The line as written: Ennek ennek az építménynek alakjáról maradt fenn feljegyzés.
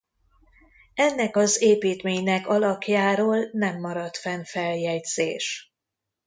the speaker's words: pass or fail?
fail